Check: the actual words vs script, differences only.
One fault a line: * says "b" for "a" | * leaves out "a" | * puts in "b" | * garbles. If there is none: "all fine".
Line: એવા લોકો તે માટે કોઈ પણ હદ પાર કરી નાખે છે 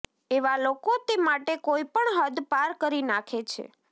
all fine